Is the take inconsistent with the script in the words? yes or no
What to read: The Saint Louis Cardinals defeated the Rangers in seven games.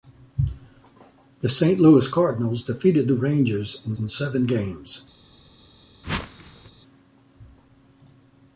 yes